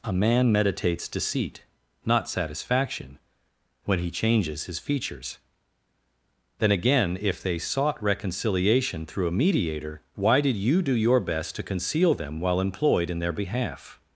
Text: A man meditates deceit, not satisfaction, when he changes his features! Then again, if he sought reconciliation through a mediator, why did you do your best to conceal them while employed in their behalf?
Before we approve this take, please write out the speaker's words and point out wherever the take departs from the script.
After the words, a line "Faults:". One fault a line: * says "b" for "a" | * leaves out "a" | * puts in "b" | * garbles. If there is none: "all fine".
A man meditates deceit, not satisfaction, when he changes his features! Then again, if they sought reconciliation through a mediator, why did you do your best to conceal them while employed in their behalf?
Faults:
* says "they" for "he"